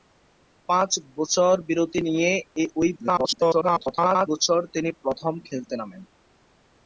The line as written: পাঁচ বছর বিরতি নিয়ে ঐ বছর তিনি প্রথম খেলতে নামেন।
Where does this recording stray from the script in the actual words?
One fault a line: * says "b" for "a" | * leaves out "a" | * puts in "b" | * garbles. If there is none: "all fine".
* garbles